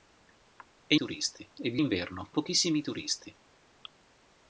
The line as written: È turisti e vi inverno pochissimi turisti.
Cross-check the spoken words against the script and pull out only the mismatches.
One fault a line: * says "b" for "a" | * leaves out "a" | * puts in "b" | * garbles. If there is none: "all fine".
all fine